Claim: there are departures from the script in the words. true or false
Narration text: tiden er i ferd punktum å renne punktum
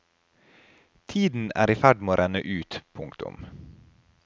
true